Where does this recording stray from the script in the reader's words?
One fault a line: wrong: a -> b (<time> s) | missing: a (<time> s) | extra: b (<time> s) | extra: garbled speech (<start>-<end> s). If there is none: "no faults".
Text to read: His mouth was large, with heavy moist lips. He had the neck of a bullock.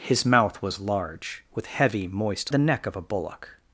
missing: lips He had (2.5 s)